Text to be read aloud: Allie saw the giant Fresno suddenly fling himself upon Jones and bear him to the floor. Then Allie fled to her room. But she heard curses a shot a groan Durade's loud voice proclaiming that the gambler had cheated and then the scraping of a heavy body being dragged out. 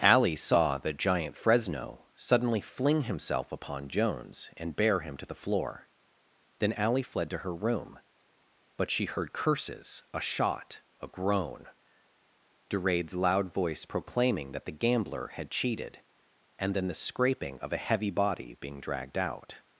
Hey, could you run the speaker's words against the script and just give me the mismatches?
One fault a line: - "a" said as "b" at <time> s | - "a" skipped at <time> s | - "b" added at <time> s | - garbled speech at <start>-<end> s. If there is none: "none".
none